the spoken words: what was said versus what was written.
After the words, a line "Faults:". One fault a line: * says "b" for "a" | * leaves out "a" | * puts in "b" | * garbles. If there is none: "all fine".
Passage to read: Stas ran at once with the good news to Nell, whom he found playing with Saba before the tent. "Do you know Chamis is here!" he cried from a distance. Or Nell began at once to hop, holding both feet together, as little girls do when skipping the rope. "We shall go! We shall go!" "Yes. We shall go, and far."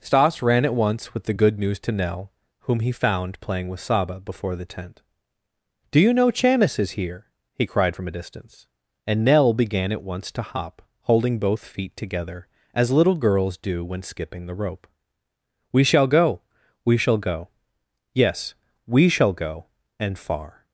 Stas ran at once with the good news to Nell, whom he found playing with Saba before the tent. "Do you know Chamis is here!" he cried from a distance. And Nell began at once to hop, holding both feet together, as little girls do when skipping the rope. "We shall go! We shall go!" "Yes. We shall go, and far."
Faults:
* says "And" for "Or"